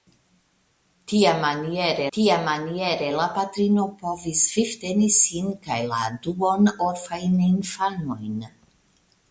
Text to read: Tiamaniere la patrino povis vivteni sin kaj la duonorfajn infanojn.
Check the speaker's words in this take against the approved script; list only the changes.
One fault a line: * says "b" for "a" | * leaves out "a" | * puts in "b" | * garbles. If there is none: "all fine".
* puts in "tiamaniere"